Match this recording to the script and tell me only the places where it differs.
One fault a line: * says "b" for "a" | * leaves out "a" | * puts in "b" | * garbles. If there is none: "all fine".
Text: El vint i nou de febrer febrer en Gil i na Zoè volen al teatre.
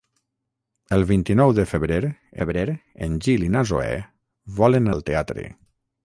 all fine